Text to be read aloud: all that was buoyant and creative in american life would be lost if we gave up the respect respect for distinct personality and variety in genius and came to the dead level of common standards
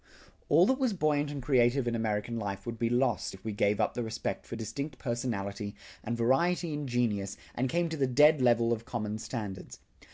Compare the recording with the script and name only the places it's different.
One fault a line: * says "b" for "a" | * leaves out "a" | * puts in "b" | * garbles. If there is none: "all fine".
* leaves out "respect"